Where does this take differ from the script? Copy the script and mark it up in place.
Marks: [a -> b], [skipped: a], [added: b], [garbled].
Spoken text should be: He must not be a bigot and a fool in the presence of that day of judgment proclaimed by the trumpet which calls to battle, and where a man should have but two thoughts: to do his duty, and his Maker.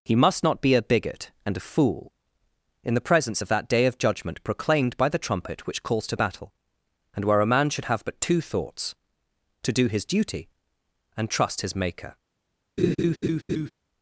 He must not be a bigot and a fool in the presence of that day of judgment proclaimed by the trumpet which calls to battle, and where a man should have but two thoughts: to do his duty, and [added: trust] his Maker.